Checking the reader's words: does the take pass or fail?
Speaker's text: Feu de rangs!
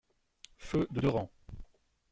fail